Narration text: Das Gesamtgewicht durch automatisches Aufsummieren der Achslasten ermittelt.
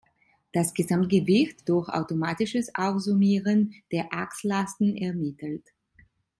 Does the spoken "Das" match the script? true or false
true